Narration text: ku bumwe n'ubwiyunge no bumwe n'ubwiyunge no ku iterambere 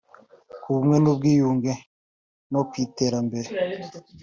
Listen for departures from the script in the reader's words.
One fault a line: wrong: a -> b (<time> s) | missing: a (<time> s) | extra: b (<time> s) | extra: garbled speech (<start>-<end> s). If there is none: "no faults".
missing: bumwe n'ubwiyunge no (2.6 s)